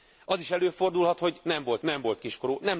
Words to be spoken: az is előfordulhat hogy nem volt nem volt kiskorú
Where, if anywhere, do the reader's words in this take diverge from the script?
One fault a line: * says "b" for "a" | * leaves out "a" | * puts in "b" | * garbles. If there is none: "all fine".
all fine